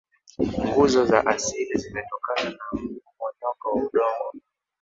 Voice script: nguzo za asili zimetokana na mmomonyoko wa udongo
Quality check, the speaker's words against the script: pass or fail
pass